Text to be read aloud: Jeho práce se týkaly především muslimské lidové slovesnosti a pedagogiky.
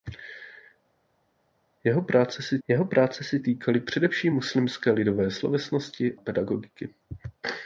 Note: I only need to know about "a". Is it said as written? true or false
false